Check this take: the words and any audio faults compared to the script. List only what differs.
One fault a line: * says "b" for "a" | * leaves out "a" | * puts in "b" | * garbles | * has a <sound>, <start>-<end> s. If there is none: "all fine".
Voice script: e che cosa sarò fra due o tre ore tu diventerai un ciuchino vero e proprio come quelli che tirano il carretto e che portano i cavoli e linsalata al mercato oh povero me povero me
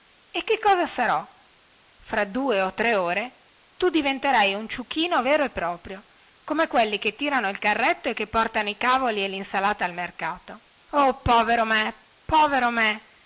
all fine